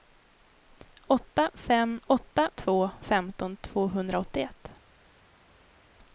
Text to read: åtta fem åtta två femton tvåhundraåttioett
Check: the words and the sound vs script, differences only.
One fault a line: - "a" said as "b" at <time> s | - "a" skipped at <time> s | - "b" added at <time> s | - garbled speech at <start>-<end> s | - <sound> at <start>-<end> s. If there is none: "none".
none